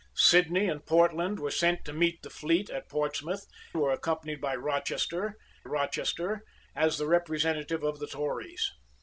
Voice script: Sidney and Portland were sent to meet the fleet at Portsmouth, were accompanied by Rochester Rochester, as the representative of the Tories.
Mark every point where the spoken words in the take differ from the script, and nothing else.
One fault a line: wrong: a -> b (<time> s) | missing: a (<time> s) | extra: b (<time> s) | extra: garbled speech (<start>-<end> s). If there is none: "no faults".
no faults